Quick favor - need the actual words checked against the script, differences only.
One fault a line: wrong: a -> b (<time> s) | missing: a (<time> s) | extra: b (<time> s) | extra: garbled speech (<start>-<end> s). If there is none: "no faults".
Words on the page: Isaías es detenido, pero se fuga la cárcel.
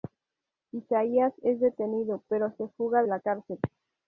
no faults